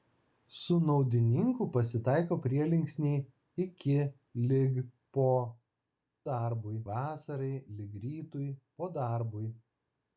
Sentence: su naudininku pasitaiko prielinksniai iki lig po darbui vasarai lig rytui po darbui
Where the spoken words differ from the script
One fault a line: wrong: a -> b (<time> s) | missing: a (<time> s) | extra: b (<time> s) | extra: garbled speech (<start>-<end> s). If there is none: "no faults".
no faults